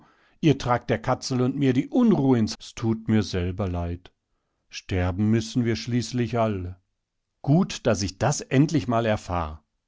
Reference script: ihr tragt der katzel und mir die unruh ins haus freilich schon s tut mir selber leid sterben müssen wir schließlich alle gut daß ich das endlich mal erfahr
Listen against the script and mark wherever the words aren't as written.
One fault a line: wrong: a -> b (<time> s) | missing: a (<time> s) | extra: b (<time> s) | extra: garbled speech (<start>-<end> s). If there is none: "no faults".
missing: haus freilich schon (2.6 s)